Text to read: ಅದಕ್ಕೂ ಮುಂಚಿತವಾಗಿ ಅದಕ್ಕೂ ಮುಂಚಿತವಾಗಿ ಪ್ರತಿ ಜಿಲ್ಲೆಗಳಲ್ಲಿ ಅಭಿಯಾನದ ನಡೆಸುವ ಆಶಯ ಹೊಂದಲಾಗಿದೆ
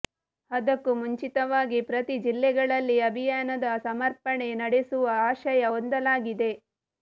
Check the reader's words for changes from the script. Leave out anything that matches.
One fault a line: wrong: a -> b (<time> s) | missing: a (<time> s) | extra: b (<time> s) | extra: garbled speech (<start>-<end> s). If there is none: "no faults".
missing: ಅದಕ್ಕೂ ಮುಂಚಿತವಾಗಿ (1.8 s)
extra: ಸಮರ್ಪಣೆ (3.9 s)